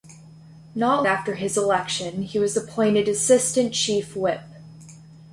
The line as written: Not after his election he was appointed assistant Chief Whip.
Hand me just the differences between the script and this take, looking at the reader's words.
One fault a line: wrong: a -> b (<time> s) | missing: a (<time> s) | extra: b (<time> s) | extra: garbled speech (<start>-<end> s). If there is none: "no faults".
no faults